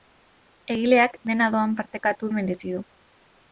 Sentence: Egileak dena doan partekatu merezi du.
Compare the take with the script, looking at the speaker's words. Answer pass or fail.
pass